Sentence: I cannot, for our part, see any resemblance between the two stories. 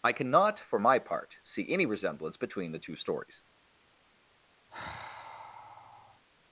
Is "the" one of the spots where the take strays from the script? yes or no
no